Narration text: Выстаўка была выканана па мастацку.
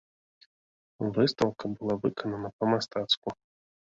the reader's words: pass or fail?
pass